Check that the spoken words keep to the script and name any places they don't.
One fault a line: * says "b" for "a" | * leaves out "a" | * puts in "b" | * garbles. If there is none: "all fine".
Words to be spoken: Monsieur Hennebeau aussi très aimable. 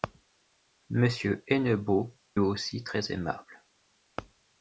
all fine